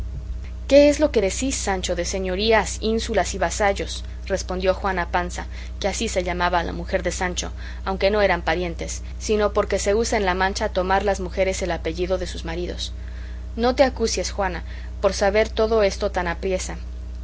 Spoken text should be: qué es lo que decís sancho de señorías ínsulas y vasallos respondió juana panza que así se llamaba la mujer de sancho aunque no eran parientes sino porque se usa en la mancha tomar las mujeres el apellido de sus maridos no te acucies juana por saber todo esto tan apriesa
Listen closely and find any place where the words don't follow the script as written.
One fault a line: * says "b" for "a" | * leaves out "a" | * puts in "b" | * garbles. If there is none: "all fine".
all fine